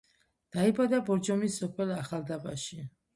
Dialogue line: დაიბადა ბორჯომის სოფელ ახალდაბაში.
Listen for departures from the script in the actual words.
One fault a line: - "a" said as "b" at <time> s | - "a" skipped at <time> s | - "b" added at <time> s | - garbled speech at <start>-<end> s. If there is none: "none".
none